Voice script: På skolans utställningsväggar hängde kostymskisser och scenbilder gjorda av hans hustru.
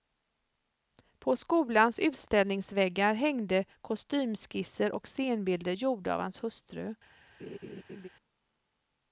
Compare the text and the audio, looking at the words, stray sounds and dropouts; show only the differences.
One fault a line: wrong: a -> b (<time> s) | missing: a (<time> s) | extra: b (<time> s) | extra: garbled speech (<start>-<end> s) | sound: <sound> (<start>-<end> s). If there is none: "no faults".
sound: laugh (7.4-8.1 s)